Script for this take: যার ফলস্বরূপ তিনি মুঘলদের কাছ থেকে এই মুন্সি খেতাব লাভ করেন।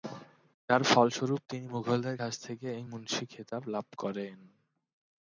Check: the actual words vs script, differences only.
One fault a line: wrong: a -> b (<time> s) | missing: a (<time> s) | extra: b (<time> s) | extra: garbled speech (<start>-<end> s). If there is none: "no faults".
no faults